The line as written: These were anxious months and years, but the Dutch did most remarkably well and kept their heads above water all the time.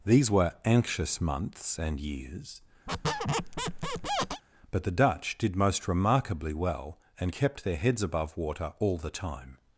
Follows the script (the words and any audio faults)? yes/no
no